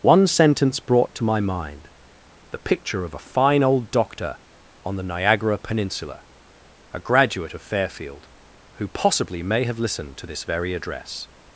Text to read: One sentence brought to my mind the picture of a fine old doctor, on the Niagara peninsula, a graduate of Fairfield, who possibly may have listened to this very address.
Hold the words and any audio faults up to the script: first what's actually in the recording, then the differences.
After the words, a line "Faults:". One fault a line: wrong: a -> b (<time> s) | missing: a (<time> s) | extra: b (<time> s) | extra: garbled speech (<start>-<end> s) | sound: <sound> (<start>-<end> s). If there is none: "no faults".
One sentence brought to my mind the picture of a fine old doctor, on the Niagara peninsula, a graduate of Fairfield, who possibly may have listened to this very address.
Faults:
no faults